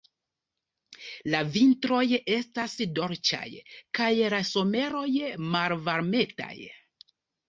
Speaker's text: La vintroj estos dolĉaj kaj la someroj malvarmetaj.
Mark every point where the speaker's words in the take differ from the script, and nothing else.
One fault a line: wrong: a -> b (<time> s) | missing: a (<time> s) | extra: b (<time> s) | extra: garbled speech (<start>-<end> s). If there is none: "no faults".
wrong: estos -> estas (2.3 s)